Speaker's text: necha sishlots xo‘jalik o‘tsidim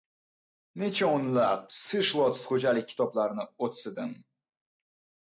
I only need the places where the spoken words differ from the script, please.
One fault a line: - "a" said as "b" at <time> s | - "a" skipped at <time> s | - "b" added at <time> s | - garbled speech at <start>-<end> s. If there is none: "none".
- "o‘nlab" added at 1.2 s
- "kitoblarini" added at 2.9 s